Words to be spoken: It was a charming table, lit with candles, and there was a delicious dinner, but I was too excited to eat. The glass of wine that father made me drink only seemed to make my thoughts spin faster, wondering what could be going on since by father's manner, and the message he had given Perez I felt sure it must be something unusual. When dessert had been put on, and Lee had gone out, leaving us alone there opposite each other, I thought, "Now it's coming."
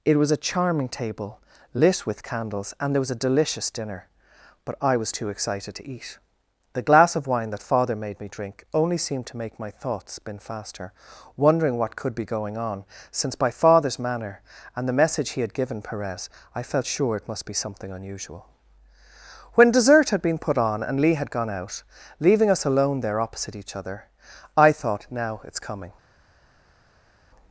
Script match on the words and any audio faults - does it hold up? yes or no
yes